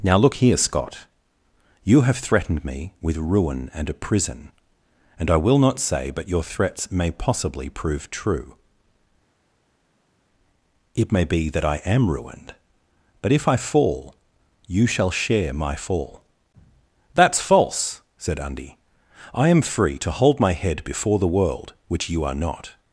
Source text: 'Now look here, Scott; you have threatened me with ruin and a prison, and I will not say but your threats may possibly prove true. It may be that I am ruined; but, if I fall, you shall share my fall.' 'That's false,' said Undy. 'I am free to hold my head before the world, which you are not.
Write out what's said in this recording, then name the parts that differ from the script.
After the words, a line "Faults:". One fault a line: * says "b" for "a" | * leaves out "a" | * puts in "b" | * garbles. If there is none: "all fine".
'Now look here, Scott; you have threatened me with ruin and a prison, and I will not say but your threats may possibly prove true. It may be that I am ruined; but, if I fall, you shall share my fall.' 'That's false,' said Undy. 'I am free to hold my head before the world, which you are not.
Faults:
all fine